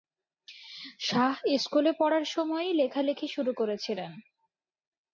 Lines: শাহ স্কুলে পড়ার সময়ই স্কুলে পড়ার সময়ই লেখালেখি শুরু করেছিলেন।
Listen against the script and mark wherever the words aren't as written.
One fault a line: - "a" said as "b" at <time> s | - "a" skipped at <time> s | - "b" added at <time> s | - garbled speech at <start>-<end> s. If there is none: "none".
- "স্কুলে পড়ার সময়ই" skipped at 2.7 s